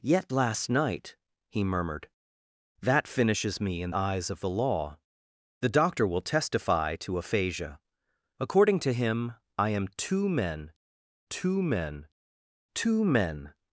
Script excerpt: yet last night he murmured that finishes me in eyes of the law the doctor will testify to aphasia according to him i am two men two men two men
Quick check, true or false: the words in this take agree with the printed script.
true